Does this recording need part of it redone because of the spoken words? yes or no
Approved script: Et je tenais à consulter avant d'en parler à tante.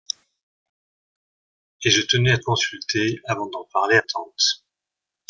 no